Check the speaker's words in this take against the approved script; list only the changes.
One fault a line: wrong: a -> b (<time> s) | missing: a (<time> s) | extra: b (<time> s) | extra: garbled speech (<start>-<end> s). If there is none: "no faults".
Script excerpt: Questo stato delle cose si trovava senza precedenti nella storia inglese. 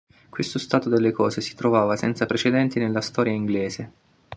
no faults